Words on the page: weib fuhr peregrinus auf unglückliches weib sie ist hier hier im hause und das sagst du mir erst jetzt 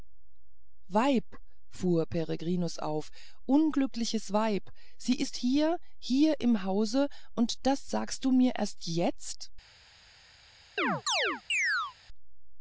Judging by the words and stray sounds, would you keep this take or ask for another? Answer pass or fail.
fail